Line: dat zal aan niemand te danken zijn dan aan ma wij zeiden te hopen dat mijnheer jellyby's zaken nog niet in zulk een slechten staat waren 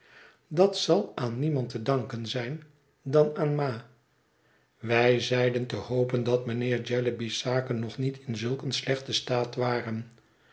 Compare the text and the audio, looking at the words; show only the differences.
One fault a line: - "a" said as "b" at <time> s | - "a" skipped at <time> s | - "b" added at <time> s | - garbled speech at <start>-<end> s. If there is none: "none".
none